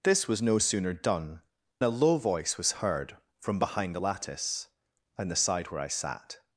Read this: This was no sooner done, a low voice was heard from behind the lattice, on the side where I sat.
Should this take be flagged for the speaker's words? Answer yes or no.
no